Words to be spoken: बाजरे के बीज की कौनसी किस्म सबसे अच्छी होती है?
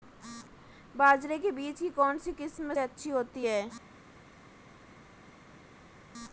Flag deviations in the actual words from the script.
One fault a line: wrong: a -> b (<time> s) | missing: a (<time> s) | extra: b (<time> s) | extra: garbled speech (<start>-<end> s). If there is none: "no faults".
missing: सबसे (2.7 s)